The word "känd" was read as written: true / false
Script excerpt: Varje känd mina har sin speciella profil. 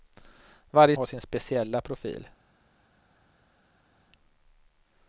false